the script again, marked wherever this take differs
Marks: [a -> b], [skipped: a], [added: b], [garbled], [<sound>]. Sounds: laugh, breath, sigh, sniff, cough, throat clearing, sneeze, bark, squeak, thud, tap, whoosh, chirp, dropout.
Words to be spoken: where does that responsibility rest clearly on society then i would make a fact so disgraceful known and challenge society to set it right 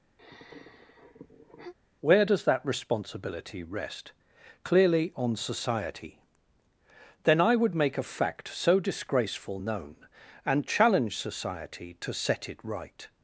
[sigh] where does that responsibility rest clearly on society then i would make a fact so disgraceful known and challenge society to set it right